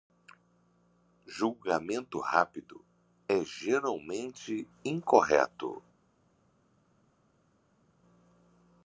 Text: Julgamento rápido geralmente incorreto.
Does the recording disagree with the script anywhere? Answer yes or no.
yes